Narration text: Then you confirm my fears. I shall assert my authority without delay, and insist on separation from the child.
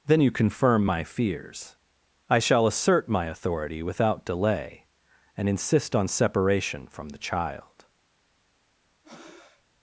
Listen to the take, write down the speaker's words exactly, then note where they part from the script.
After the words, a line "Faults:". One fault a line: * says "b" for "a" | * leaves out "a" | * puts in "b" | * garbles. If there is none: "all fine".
Then you confirm my fears. I shall assert my authority without delay, and insist on separation from the child.
Faults:
all fine